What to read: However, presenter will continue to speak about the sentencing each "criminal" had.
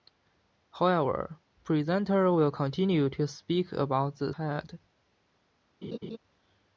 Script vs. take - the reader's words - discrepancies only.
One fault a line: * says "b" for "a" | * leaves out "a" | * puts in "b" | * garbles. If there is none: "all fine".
* leaves out "sentencing each criminal"